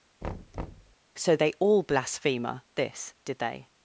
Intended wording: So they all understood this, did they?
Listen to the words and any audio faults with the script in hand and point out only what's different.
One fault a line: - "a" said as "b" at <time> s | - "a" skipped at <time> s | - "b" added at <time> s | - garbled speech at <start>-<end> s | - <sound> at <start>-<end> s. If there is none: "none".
- thud at 0.2-1.0 s
- "understood" said as "blasphemer" at 1.8 s